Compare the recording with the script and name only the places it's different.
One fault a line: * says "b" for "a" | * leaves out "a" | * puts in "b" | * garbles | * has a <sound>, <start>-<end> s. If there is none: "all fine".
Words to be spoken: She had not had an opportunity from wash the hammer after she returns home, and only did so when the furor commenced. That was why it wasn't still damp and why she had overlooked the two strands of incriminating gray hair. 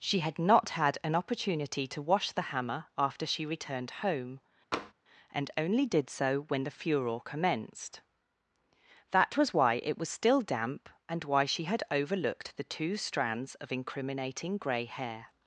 * says "to" for "from"
* says "returned" for "returns"
* has a tap, 4.7-4.9 s
* says "was" for "wasn't"